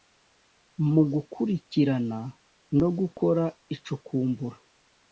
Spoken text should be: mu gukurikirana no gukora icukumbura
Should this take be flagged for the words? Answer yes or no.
no